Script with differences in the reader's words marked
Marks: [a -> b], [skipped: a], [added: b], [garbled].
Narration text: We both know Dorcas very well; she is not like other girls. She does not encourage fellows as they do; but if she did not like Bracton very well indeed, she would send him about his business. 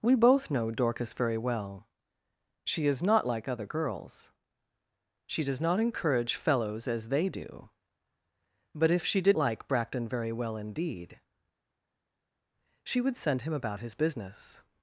We both know Dorcas very well; she is not like other girls. She does not encourage fellows as they do; but if she did [skipped: not] like Bracton very well indeed, she would send him about his business.